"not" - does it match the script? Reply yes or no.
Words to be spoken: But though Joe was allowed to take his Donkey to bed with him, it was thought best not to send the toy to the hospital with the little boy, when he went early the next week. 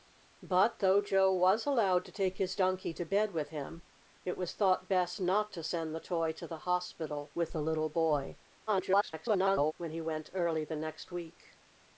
yes